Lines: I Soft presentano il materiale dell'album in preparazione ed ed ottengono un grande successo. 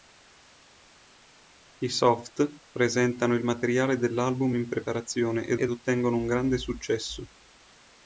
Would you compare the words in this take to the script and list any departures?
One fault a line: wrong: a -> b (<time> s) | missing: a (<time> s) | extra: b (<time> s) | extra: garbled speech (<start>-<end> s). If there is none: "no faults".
no faults